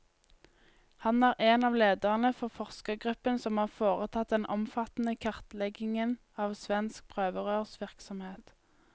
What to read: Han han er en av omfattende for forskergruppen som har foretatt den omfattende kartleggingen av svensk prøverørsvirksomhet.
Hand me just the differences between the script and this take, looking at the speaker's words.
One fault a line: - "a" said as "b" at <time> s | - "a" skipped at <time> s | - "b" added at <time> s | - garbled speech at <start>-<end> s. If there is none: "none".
- "han" skipped at 1.2 s
- "omfattende" said as "lederne" at 1.8 s